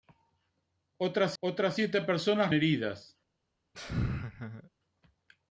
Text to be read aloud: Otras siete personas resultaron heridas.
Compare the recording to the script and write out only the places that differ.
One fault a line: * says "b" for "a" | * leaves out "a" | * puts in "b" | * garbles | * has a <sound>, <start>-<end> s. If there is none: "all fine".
* puts in "otras"
* leaves out "resultaron"
* has a laugh, 3.7-4.7 s